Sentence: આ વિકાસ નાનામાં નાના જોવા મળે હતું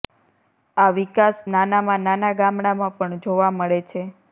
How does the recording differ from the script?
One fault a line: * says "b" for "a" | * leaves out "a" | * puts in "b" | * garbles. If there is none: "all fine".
* puts in "ગામડામાં પણ"
* says "છે" for "હતું"